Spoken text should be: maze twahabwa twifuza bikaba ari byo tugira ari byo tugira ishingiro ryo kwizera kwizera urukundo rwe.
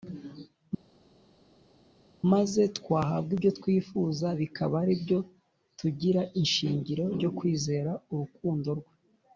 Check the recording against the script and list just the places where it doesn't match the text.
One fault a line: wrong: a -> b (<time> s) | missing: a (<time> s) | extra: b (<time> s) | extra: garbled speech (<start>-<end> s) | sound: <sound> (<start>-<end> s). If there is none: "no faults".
extra: ibyo (3.4 s)
missing: ari byo tugira (6.2 s)
missing: kwizera (7.9 s)